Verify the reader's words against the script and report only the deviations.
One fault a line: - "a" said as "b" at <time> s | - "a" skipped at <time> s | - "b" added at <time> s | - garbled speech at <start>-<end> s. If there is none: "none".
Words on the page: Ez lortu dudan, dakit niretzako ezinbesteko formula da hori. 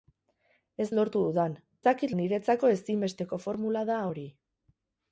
none